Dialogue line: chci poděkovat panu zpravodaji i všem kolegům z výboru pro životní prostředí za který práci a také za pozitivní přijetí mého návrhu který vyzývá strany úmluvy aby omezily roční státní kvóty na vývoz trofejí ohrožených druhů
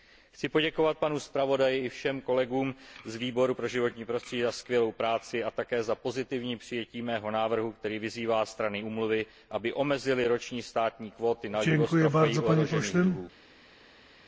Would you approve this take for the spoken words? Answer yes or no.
no